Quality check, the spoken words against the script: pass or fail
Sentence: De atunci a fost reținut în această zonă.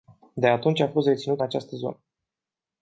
fail